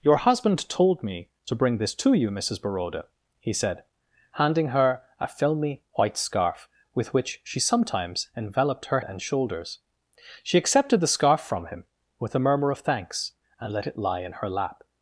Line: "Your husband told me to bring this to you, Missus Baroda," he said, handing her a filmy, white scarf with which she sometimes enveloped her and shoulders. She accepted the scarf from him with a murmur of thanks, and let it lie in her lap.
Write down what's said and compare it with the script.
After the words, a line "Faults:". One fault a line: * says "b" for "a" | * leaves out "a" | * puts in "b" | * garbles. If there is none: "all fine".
"Your husband told me to bring this to you, Missus Baroda," he said, handing her a filmy, white scarf with which she sometimes enveloped her and shoulders. She accepted the scarf from him with a murmur of thanks, and let it lie in her lap.
Faults:
all fine